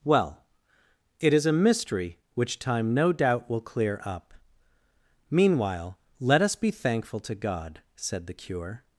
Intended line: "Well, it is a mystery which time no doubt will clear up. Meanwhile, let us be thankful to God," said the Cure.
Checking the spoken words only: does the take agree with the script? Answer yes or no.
yes